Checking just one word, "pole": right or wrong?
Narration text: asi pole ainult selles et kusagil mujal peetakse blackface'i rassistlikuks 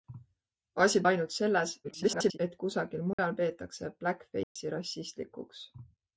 wrong